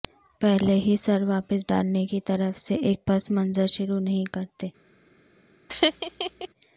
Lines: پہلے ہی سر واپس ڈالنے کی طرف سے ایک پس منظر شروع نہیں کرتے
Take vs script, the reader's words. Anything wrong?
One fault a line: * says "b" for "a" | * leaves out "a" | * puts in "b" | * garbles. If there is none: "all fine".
all fine